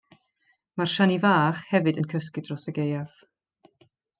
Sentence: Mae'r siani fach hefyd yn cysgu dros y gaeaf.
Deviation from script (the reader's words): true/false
false